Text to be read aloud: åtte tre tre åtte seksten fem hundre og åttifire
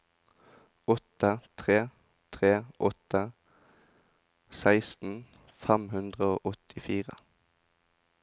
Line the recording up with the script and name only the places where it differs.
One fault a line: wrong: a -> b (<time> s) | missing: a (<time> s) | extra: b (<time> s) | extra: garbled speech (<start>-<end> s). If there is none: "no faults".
no faults